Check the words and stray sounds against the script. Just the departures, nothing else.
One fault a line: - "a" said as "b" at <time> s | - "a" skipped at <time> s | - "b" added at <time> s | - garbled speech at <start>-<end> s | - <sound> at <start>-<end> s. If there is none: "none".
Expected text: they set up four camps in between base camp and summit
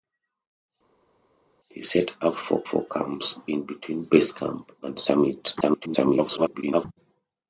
- "four" added at 2.6 s
- garbled speech at 5.6-6.9 s